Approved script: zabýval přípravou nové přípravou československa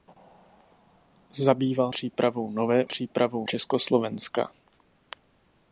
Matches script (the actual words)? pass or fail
pass